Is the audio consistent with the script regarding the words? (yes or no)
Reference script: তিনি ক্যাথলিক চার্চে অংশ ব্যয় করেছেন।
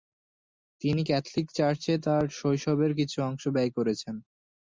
no